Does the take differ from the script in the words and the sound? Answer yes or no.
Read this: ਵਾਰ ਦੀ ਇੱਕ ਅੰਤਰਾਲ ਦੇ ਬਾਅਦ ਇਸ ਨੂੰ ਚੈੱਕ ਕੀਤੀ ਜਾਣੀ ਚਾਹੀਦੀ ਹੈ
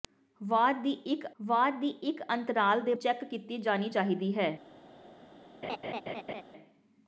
yes